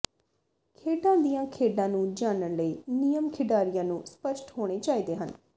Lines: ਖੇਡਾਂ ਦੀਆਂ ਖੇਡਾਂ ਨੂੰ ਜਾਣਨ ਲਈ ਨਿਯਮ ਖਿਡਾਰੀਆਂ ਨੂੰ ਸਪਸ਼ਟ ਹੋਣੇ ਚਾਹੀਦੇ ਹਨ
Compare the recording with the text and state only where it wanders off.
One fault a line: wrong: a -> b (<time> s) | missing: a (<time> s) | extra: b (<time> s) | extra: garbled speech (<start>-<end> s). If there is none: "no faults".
no faults